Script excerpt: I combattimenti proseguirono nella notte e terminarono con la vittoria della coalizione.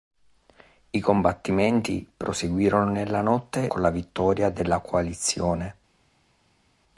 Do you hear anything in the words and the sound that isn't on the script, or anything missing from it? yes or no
yes